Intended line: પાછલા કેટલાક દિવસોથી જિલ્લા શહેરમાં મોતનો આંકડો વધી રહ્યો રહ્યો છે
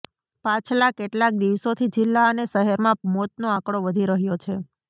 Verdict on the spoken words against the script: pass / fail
fail